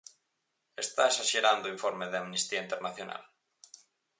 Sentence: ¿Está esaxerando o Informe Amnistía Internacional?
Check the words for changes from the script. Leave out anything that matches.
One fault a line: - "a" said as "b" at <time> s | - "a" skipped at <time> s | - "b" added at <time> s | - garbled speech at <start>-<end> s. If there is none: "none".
- "de" added at 2.1 s